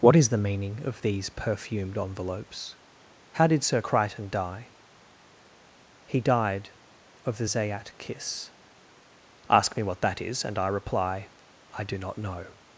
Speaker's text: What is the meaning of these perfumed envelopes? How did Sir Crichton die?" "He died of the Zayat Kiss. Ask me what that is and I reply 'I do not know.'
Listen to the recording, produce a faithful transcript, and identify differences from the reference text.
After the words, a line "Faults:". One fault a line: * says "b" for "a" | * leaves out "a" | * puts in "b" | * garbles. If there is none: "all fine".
What is the meaning of these perfumed envelopes? How did Sir Crichton die?" "He died of the Zayat Kiss. Ask me what that is and I reply 'I do not know.'
Faults:
all fine